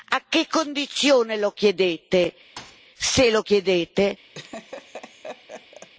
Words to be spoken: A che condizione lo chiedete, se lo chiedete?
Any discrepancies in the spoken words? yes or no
no